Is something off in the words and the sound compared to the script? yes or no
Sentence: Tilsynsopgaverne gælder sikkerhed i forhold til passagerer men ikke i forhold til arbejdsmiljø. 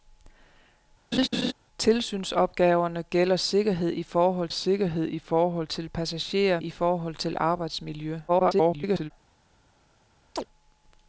yes